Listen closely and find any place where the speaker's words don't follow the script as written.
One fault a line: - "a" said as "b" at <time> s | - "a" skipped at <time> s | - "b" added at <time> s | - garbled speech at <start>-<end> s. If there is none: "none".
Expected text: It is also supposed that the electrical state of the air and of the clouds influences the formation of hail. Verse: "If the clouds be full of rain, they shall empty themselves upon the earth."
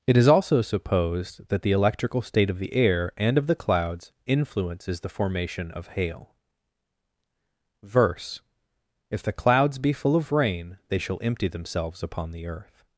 none